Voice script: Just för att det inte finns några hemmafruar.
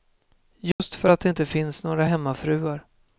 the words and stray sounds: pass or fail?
fail